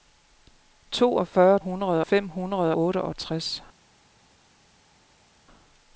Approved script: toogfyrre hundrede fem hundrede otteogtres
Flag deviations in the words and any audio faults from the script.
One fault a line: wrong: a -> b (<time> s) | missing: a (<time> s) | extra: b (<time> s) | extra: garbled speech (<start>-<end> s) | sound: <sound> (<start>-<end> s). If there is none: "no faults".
no faults